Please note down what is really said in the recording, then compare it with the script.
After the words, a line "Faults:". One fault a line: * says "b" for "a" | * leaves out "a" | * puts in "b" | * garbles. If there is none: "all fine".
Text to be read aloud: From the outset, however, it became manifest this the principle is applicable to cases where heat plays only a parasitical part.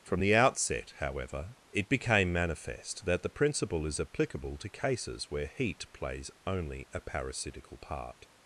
From the outset, however, it became manifest that the principle is applicable to cases where heat plays only a parasitical part.
Faults:
* says "that" for "this"